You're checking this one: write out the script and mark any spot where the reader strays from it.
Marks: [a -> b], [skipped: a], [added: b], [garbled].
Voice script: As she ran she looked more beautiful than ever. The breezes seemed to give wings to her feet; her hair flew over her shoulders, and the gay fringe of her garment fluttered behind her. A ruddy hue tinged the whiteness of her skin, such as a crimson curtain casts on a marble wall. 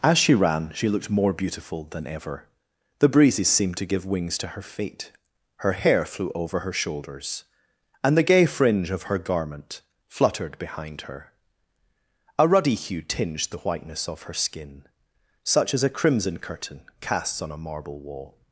As she ran she looked more beautiful than ever. The breezes seemed to give wings to her feet; her hair flew over her shoulders, and the gay fringe of her garment fluttered behind her. A ruddy hue tinged the whiteness of her skin, such as a crimson curtain casts on a marble wall.